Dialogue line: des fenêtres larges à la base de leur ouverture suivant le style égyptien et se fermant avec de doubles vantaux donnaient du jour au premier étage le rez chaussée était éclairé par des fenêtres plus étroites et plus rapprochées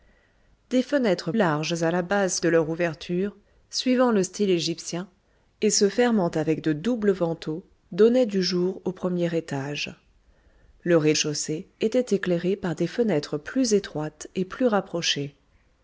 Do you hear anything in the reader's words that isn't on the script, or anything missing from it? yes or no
no